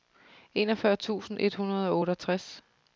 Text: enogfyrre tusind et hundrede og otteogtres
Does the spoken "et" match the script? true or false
true